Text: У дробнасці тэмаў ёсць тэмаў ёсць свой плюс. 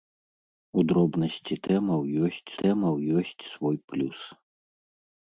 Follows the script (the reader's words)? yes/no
yes